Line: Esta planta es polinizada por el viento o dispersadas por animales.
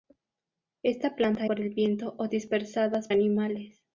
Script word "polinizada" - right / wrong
wrong